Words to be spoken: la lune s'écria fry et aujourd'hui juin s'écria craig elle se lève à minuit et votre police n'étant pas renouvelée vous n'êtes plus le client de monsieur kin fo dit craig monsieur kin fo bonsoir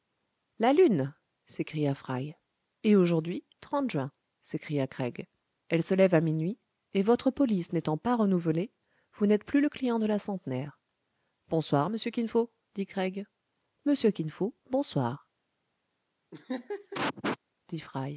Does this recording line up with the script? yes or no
no